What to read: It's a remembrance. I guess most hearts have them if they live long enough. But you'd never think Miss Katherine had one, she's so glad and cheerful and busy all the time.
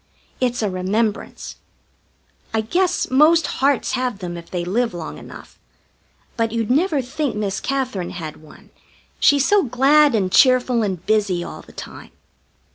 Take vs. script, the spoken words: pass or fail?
pass